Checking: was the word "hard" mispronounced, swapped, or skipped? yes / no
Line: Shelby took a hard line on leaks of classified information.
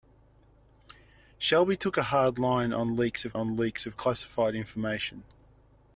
no